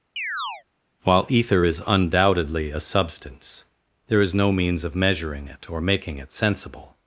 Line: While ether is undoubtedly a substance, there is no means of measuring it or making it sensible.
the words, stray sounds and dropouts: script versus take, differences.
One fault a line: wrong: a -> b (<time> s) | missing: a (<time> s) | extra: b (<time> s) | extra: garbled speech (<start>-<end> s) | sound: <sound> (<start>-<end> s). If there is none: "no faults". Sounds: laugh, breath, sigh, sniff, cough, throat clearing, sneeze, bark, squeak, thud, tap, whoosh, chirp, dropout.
sound: chirp (0.2-0.6 s)